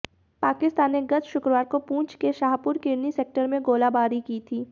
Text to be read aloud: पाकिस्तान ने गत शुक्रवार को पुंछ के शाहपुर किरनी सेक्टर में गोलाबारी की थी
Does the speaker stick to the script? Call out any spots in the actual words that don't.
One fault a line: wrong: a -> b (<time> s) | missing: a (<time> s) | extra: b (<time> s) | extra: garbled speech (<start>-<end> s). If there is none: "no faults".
no faults